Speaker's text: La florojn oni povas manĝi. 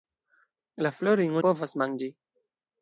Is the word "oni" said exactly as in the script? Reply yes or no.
no